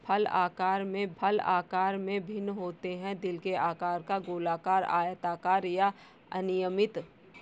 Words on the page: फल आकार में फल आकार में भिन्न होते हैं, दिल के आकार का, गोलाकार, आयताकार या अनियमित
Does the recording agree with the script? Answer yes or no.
yes